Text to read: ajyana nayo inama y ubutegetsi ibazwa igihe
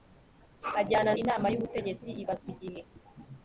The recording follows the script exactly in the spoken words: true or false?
false